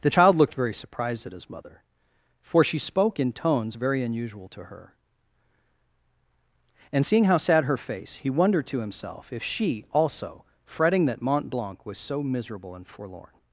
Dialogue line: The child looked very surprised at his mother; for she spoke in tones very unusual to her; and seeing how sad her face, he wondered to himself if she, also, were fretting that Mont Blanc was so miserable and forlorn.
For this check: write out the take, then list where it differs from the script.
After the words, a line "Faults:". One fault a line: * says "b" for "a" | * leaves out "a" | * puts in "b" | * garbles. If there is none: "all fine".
The child looked very surprised at his mother; for she spoke in tones very unusual to her; and seeing how sad her face, he wondered to himself if she, also, fretting that Mont Blanc was so miserable and forlorn.
Faults:
* leaves out "were"